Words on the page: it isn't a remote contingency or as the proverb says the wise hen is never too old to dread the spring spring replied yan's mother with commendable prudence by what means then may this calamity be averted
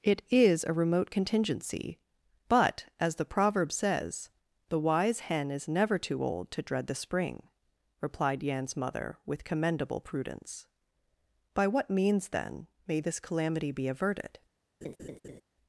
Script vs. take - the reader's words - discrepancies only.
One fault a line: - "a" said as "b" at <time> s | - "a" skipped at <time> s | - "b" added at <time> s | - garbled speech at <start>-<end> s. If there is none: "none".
- "isn't" said as "is" at 0.3 s
- "or" said as "but" at 2.5 s
- "spring" skipped at 7.5 s